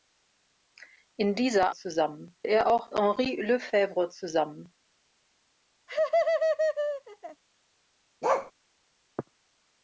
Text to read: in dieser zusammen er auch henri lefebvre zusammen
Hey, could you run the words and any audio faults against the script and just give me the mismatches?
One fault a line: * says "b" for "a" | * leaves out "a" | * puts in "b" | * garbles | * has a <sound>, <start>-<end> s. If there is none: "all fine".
* has a laugh, 5.9-7.4 s
* has a bark, 8.2-8.5 s